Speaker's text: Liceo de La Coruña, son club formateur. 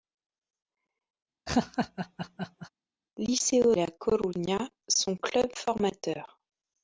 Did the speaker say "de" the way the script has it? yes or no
no